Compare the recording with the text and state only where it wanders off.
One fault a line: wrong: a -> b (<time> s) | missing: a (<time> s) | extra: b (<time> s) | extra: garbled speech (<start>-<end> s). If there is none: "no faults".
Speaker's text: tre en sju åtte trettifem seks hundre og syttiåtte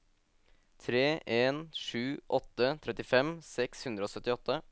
no faults